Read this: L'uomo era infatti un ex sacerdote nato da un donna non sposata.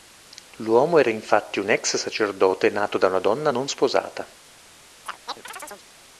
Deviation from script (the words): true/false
true